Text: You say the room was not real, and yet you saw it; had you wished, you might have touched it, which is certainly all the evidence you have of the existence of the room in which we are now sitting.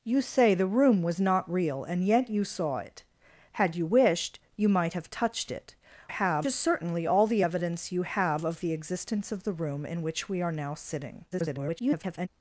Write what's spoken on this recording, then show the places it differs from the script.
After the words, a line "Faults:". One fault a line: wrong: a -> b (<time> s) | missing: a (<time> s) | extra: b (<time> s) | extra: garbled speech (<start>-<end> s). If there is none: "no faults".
You say the room was not real, and yet you saw it; had you wished, you might have touched it, have is certainly all the evidence you have of the existence of the room in which we are now sitting. [garbled]
Faults:
wrong: which -> have (6.1 s)
extra: garbled speech (11.3-12.3 s)